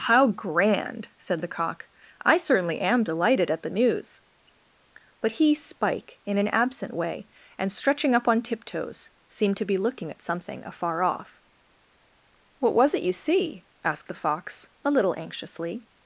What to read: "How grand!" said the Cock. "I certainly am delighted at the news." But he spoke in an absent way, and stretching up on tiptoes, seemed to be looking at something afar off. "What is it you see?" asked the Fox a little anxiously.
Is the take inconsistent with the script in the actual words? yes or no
yes